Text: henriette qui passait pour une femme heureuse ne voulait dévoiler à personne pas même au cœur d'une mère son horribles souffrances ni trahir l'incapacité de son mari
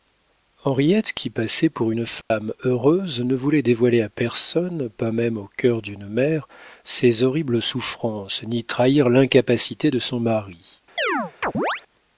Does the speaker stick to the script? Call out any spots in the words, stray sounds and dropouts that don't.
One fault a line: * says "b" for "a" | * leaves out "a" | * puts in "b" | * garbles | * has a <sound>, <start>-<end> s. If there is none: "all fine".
* has a dropout, 2.2-2.3 s
* says "ses" for "son"
* has a chirp, 11.0-11.8 s